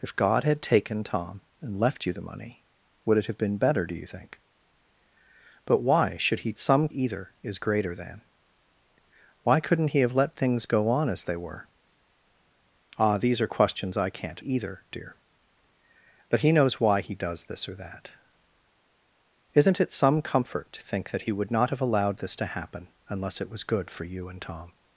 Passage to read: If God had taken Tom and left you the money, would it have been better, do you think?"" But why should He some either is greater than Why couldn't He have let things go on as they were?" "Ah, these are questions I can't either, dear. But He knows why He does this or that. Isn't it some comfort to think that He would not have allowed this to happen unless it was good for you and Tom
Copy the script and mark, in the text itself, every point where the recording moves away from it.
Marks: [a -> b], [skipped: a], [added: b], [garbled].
If God had taken Tom and left you the money, would it have been better, do you think?"" But why should He some either is greater than Why couldn't He have let things go on as they were?" "Ah, these are questions I can't either, dear. But He knows why He does this or that. Isn't it some comfort to think that He would not have allowed this to happen unless it was good for you and Tom